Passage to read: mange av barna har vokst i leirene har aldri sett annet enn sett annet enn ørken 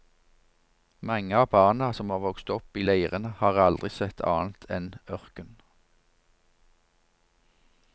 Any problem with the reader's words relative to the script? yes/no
yes